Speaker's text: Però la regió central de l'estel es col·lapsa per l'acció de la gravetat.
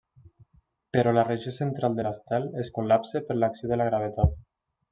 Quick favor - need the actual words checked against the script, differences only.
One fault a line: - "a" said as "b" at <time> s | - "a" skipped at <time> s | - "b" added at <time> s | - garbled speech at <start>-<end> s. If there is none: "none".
none